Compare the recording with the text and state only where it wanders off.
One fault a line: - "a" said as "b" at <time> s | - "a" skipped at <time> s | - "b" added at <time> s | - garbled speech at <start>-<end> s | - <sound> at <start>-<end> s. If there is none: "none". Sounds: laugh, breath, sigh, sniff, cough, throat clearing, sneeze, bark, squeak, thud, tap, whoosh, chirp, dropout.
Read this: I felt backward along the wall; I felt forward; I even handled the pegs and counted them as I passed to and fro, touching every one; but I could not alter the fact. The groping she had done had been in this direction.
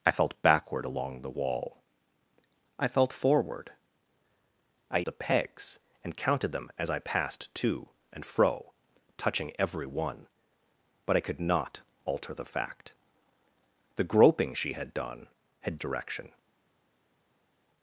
- "even handled" skipped at 5.0 s
- "been in this" skipped at 15.8 s